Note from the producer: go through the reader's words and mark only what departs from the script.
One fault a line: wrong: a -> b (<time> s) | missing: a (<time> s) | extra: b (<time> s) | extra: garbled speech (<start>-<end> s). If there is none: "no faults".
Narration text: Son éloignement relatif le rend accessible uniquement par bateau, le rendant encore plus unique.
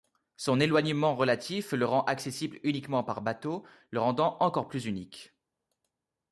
no faults